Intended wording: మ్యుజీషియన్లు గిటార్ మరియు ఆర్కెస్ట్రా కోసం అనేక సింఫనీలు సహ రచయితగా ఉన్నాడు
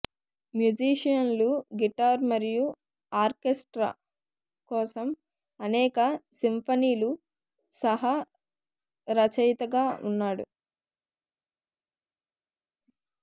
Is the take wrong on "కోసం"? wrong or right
right